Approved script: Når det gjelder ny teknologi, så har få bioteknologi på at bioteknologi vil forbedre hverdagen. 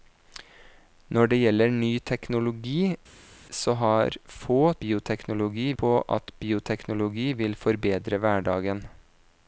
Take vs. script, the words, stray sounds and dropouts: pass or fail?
pass